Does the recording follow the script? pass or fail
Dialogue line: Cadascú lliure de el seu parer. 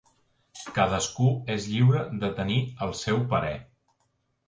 fail